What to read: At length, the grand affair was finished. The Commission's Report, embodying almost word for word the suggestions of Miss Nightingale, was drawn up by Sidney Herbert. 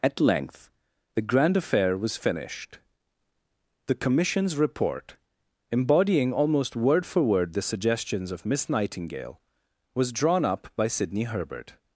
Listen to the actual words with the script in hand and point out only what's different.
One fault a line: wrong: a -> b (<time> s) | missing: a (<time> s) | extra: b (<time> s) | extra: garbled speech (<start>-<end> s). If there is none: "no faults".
no faults